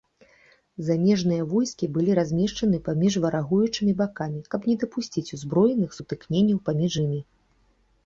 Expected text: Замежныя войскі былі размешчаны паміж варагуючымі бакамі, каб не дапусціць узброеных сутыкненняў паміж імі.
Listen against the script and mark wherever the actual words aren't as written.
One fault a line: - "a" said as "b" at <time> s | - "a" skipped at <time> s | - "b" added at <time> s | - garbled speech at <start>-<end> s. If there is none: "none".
none